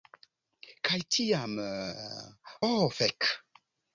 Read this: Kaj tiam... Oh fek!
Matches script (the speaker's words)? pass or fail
pass